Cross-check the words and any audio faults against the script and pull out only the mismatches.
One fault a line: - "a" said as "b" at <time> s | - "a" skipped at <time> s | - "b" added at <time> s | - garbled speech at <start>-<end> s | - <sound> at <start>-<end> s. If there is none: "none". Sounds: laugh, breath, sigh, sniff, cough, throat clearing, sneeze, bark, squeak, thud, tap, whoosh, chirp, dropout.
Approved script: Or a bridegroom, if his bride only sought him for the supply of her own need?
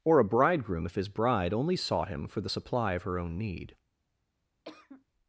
- cough at 4.6-5.0 s